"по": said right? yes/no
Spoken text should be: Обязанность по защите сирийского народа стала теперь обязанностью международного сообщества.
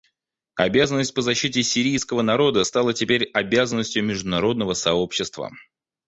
yes